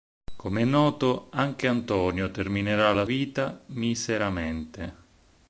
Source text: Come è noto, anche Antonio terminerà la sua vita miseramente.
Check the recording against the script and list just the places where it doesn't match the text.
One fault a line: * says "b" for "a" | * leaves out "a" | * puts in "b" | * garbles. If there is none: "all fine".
* leaves out "sua"